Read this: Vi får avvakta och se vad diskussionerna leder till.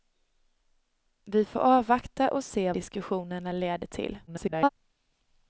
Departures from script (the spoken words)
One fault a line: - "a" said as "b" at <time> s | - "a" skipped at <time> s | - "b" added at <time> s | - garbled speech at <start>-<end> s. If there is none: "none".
- "vad" skipped at 2.7 s
- garbled speech at 4.3-4.7 s